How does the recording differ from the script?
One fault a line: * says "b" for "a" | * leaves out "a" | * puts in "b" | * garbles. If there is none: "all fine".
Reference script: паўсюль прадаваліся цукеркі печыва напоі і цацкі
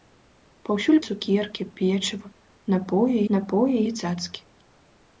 * leaves out "прадаваліся"
* puts in "напоі"